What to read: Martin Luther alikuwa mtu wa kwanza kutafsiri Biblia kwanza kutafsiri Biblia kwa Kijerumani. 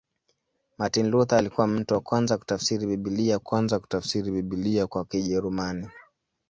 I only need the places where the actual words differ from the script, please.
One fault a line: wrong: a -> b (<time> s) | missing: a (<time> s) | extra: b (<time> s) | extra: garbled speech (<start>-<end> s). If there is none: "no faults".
no faults